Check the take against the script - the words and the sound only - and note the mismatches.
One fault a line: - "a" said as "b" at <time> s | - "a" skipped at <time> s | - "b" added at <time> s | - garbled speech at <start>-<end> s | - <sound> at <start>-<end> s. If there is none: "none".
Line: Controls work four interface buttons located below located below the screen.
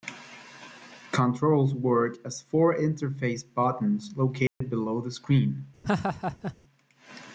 - "as" added at 2.2 s
- dropout at 4.5-4.6 s
- "located below" skipped at 5.0 s
- laugh at 5.8-6.6 s